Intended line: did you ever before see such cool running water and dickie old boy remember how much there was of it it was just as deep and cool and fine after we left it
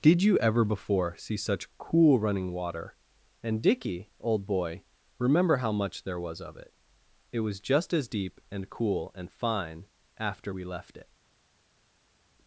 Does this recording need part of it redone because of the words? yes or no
no